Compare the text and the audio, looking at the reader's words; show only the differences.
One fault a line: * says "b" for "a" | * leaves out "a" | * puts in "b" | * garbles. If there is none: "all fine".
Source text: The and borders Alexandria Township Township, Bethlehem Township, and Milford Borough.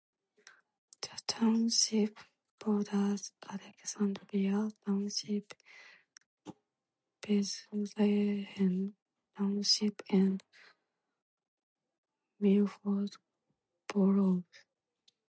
* says "township" for "and"
* leaves out "Township"